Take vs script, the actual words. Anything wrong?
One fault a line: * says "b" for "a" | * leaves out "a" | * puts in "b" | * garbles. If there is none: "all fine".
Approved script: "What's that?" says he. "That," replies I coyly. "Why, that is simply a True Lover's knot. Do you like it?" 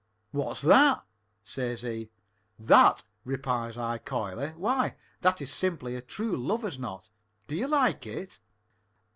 all fine